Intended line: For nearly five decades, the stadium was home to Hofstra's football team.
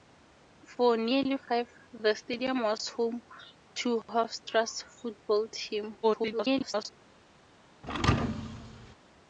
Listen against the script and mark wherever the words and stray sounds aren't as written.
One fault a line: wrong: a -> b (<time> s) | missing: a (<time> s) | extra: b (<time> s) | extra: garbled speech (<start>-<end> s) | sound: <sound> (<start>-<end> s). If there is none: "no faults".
missing: decades (1.7 s)
extra: garbled speech (6.0-6.9 s)
sound: thud (7.8-9.0 s)